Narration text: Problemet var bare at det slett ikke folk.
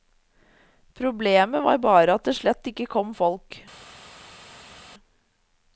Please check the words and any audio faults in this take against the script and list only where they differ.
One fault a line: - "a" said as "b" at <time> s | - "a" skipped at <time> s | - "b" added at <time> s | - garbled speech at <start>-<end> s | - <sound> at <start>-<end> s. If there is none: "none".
- "kom" added at 3.0 s